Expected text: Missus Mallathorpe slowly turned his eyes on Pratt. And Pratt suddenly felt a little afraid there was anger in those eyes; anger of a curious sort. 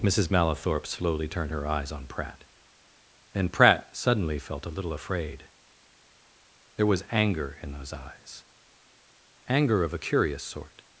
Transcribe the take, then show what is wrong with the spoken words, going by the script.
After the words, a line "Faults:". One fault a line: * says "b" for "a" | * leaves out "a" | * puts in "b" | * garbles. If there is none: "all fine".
Missus Mallathorpe slowly turned her eyes on Pratt. And Pratt suddenly felt a little afraid there was anger in those eyes; anger of a curious sort.
Faults:
* says "her" for "his"